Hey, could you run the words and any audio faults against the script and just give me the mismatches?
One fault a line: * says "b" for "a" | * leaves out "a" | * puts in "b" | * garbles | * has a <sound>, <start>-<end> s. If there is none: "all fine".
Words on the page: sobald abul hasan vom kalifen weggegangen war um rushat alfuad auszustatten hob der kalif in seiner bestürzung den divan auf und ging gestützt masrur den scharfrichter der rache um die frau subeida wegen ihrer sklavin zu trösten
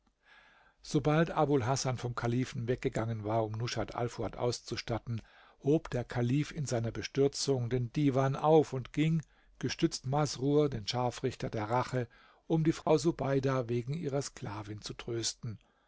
* has a dropout, 12.8-12.9 s